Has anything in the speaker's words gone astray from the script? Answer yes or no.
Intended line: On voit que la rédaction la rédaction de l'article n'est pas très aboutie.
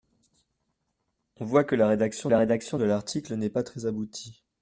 no